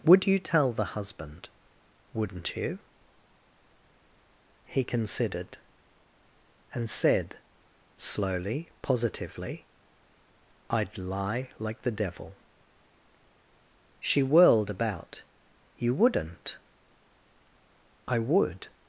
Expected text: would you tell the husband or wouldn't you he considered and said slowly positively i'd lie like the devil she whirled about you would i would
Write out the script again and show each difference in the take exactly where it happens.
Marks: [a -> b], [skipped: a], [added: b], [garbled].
would you tell the husband [skipped: or] wouldn't you he considered and said slowly positively i'd lie like the devil she whirled about you [would -> wouldn't] i would